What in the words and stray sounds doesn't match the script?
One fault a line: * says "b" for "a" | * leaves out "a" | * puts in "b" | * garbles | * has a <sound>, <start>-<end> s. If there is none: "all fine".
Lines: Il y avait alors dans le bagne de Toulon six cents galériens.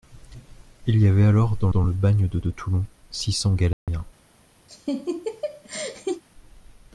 * puts in "dans"
* puts in "de"
* has a dropout, 3.7-3.9 s
* has a laugh, 4.7-6.2 s